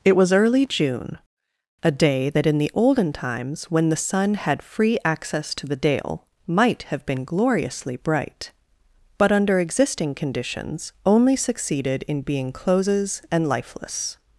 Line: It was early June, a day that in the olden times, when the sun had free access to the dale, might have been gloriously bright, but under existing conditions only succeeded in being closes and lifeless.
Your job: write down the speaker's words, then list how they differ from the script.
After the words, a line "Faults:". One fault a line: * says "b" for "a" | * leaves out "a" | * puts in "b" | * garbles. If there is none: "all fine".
It was early June, a day that in the olden times, when the sun had free access to the dale, might have been gloriously bright, but under existing conditions only succeeded in being closes and lifeless.
Faults:
all fine